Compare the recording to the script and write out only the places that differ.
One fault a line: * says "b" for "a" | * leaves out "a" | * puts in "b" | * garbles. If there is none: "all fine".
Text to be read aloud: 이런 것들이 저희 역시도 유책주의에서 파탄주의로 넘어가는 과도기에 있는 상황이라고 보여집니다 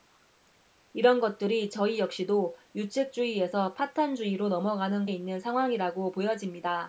* leaves out "과도기에"